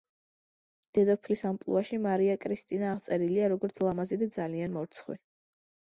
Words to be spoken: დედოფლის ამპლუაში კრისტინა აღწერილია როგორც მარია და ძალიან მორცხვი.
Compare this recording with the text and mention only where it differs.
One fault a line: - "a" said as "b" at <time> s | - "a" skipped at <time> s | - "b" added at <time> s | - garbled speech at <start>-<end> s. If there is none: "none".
- "მარია" added at 2.1 s
- "მარია" said as "ლამაზი" at 3.9 s